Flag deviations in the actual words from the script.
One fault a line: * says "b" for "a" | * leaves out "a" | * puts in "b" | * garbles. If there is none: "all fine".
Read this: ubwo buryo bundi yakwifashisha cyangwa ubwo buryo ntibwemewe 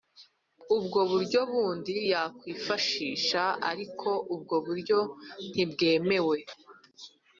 * says "ariko" for "cyangwa"